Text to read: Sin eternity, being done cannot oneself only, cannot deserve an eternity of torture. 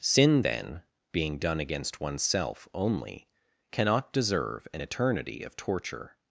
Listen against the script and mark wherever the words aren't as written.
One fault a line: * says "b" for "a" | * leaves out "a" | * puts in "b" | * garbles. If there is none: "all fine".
* says "then" for "eternity"
* says "against" for "cannot"